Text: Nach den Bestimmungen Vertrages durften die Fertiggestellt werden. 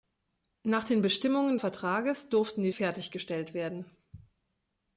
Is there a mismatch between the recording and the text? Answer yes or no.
no